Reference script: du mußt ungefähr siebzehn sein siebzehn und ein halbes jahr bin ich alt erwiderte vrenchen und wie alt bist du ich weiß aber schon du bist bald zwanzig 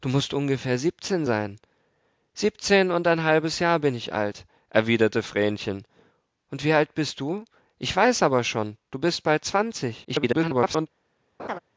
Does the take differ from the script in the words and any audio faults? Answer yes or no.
yes